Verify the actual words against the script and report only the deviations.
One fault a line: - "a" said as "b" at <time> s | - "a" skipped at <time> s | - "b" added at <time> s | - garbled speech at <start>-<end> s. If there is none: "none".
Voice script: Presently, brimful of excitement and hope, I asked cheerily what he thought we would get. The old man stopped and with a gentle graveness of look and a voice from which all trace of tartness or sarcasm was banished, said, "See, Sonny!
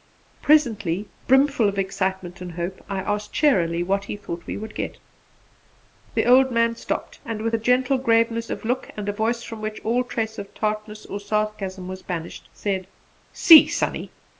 none